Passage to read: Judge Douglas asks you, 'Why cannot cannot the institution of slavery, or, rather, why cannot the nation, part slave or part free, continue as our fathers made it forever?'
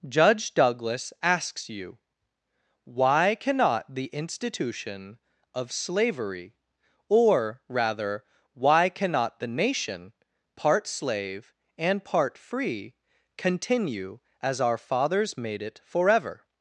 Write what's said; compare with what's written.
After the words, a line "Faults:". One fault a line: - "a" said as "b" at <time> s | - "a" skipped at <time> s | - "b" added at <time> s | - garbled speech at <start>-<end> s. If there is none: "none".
Judge Douglas asks you, 'Why cannot the institution of slavery, or, rather, why cannot the nation, part slave and part free, continue as our fathers made it forever?'
Faults:
- "cannot" skipped at 3.9 s
- "or" said as "and" at 11.8 s